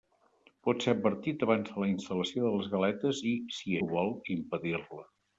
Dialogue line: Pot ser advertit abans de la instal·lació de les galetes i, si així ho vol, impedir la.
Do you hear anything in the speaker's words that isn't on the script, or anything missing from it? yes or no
yes